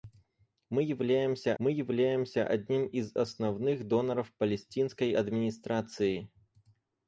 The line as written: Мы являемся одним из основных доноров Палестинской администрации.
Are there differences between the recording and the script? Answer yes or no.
yes